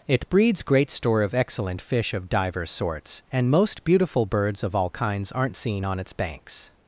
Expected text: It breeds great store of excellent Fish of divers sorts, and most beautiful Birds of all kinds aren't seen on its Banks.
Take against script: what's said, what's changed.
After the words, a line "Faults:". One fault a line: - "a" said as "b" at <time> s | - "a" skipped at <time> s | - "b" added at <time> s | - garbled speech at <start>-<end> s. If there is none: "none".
It breeds great store of excellent Fish of divers sorts, and most beautiful Birds of all kinds aren't seen on its Banks.
Faults:
none